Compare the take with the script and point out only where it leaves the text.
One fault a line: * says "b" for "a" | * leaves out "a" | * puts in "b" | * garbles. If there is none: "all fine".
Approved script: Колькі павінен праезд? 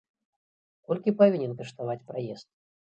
* puts in "каштаваць"